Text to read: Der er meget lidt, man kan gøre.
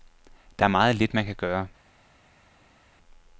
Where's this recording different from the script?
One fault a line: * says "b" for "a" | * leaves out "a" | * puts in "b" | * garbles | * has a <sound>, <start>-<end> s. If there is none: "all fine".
all fine